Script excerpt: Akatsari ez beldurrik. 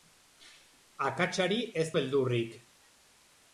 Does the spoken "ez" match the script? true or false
true